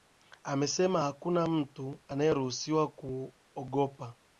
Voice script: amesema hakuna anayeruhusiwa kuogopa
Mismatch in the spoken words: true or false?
true